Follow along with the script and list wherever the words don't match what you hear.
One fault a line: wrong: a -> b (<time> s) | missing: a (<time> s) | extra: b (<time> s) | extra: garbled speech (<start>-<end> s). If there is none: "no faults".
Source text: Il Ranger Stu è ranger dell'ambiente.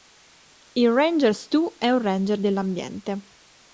extra: un (1.9 s)